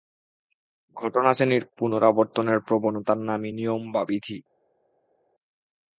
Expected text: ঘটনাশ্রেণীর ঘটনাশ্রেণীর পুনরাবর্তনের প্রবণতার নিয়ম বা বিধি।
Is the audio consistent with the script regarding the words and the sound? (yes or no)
no